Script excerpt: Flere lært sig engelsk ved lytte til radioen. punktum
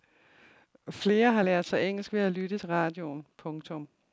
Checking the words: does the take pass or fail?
fail